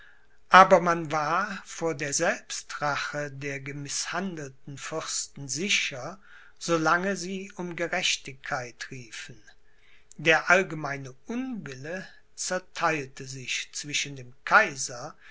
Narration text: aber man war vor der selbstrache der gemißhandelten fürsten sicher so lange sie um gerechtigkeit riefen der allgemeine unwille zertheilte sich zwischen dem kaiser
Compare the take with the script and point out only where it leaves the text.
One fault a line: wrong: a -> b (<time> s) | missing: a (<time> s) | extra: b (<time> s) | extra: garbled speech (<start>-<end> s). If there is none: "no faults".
no faults